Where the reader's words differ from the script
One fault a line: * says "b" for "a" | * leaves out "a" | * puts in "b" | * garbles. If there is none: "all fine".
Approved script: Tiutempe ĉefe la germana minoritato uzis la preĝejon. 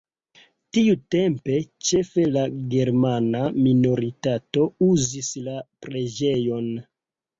all fine